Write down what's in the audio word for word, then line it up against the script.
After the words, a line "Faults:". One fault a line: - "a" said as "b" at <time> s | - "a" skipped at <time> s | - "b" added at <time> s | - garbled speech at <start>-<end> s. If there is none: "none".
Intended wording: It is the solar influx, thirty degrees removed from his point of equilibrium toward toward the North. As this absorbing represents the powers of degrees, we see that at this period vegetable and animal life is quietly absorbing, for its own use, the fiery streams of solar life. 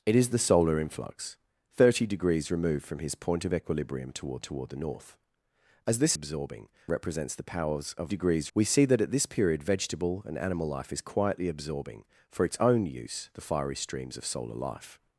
It is the solar influx, thirty degrees removed from his point of equilibrium toward toward the North. As this absorbing represents the powers of degrees, we see that at this period vegetable and animal life is quietly absorbing, for its own use, the fiery streams of solar life.
Faults:
none